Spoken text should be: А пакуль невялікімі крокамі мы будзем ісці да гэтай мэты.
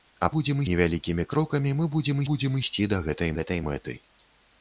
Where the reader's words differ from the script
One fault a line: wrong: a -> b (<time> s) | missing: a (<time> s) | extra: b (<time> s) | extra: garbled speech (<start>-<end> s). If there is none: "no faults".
wrong: пакуль -> будзем (0.4 s)
extra: будзем (2.3 s)
extra: гэтай (3.4 s)